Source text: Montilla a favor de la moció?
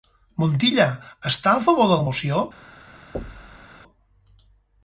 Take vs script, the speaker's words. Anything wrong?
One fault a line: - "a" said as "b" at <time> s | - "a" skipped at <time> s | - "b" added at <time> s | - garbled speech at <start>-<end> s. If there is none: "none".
- "està" added at 1.3 s